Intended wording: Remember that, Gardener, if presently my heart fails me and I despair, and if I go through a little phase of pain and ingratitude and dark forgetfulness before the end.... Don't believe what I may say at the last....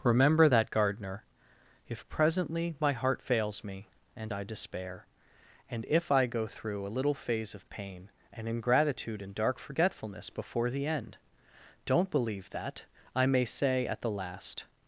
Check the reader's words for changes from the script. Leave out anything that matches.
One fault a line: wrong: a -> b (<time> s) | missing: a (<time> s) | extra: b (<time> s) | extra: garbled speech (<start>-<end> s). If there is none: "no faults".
wrong: what -> that (12.5 s)